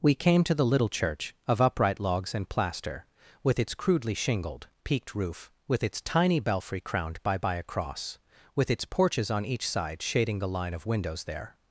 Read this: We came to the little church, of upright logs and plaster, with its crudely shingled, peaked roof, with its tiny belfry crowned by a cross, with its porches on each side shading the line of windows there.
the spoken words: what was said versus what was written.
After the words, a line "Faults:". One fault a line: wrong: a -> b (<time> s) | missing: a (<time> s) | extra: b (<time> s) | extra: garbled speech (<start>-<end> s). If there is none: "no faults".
We came to the little church, of upright logs and plaster, with its crudely shingled, peaked roof, with its tiny belfry crowned by by a cross, with its porches on each side shading the line of windows there.
Faults:
extra: by (7.4 s)